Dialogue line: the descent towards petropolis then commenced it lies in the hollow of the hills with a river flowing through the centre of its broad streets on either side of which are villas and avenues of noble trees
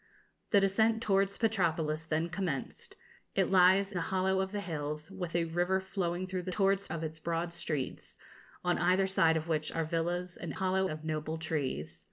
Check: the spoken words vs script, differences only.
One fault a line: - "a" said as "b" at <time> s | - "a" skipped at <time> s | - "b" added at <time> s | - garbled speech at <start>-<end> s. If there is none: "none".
- "in" skipped at 3.9 s
- "centre" said as "towards" at 6.5 s
- "avenues" said as "hollow" at 10.6 s